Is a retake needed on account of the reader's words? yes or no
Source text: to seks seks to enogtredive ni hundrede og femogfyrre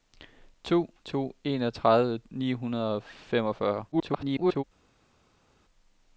yes